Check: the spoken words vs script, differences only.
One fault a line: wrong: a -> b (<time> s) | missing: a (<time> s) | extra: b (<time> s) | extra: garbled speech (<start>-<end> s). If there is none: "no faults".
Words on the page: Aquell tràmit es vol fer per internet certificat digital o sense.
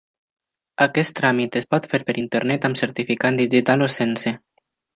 wrong: Aquell -> Aquest (0.8 s)
wrong: vol -> pot (1.7 s)
extra: amb (2.7 s)